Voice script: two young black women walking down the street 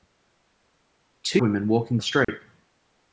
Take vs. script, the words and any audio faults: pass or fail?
fail